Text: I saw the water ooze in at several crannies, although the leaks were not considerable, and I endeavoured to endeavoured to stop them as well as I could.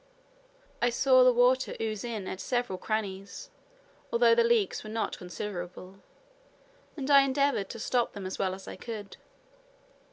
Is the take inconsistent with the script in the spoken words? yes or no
yes